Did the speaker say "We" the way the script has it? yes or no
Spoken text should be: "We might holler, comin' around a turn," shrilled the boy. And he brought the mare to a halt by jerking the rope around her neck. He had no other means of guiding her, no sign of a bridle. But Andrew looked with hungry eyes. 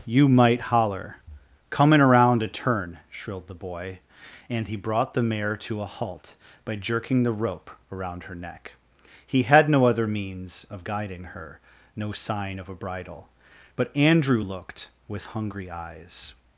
no